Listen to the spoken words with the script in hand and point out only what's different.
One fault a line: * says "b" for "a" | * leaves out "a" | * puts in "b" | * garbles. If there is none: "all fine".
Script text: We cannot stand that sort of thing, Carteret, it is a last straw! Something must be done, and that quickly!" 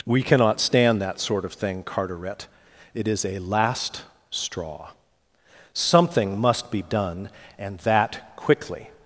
all fine